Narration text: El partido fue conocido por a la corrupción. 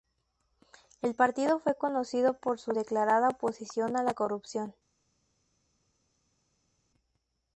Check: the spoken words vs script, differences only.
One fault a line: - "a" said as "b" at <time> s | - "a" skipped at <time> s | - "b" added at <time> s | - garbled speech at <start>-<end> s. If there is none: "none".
- "su declarada oposición" added at 2.6 s